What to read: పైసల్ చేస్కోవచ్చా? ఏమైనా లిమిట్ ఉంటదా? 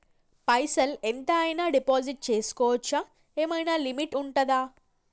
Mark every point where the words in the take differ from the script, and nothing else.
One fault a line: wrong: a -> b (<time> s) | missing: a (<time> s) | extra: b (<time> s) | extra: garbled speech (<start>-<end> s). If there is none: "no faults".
extra: ఎంత అయినా డిపాజిట్ (1.0 s)